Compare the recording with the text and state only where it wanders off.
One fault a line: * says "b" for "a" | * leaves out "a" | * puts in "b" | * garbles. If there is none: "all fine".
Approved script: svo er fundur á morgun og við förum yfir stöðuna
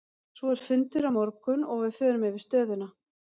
all fine